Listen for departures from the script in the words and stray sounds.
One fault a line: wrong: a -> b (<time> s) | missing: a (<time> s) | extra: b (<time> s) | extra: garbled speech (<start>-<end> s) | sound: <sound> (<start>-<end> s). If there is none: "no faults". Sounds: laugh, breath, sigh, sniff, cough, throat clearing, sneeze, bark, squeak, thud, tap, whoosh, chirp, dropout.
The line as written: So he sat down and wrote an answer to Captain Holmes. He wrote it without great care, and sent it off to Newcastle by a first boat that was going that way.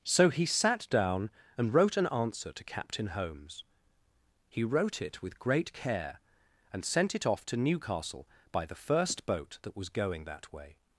wrong: without -> with (5.2 s)
wrong: a -> the (8.6 s)